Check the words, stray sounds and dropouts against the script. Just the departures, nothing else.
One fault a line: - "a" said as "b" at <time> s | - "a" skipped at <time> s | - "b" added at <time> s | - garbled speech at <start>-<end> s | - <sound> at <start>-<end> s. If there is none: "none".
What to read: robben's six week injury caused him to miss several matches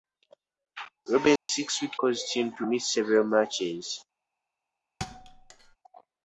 - dropout at 1.4-1.5 s
- "injury" skipped at 2.0 s
- thud at 5.0-5.8 s